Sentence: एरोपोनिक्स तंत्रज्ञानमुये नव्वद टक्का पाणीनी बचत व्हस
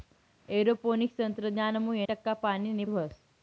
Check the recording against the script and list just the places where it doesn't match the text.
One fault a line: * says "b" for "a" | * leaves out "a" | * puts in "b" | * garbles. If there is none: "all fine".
* leaves out "नव्वद"
* leaves out "बचत"